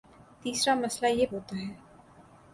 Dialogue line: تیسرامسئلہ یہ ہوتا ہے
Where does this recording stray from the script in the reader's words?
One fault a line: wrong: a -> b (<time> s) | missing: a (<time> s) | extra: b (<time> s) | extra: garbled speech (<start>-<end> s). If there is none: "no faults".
no faults